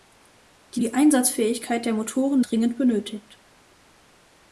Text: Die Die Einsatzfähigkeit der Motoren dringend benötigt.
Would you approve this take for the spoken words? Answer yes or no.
yes